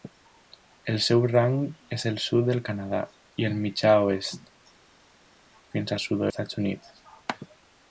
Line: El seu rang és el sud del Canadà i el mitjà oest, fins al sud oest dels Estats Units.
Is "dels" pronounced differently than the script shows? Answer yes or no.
yes